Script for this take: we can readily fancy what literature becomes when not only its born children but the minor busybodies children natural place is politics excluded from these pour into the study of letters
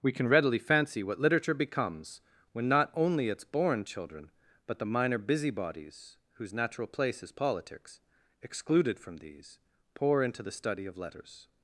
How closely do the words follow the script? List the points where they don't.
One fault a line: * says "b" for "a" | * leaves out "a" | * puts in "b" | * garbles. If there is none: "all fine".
* says "whose" for "children"